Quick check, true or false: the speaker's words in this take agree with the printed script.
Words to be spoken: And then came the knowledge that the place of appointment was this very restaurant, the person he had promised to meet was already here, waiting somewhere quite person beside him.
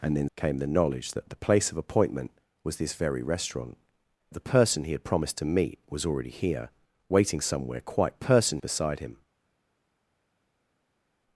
true